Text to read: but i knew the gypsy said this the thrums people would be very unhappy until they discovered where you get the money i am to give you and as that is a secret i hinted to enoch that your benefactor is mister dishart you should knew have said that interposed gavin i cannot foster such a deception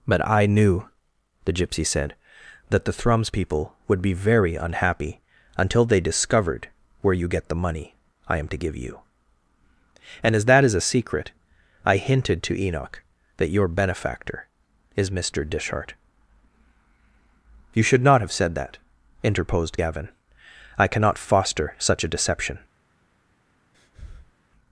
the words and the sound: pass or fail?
fail